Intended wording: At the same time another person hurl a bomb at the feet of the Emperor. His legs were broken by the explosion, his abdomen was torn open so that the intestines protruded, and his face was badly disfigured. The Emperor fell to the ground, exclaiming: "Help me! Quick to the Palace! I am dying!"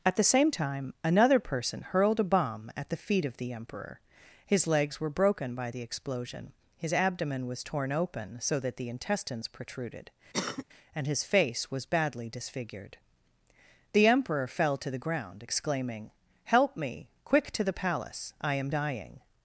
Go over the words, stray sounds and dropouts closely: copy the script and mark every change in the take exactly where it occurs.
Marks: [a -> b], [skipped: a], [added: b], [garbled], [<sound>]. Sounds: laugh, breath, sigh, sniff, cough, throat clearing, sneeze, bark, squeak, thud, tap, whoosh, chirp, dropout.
At the same time another person [hurl -> hurled] a bomb at the feet of the Emperor. His legs were broken by the explosion, his abdomen was torn open so that the intestines protruded, [cough] and his face was badly disfigured. The Emperor fell to the ground, exclaiming: "Help me! Quick to the Palace! I am dying!"